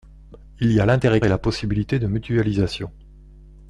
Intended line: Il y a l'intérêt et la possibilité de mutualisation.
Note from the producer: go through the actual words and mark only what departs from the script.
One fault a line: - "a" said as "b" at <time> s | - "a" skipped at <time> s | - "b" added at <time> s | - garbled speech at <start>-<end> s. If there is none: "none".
none